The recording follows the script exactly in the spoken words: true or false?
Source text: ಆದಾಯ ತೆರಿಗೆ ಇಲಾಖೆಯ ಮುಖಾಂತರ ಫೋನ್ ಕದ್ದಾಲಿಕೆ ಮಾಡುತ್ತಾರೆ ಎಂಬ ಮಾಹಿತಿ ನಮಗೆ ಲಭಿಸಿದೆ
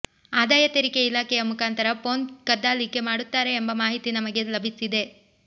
true